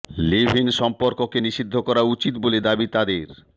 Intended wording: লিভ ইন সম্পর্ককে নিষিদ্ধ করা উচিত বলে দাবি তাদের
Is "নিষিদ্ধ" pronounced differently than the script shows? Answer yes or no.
no